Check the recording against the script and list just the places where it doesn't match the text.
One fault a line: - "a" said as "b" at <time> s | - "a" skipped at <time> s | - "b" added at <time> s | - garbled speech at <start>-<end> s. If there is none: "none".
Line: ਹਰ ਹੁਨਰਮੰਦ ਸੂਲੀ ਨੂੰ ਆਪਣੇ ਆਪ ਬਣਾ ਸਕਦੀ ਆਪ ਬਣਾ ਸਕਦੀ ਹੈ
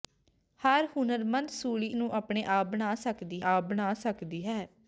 none